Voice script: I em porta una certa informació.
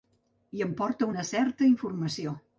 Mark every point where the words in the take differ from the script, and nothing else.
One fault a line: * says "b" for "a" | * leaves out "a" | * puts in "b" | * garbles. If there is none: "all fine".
all fine